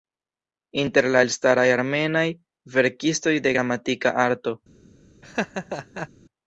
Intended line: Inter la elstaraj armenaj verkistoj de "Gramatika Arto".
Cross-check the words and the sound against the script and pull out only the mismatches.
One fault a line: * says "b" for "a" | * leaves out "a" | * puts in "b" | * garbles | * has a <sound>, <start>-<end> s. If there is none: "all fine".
* has a laugh, 5.2-6.1 s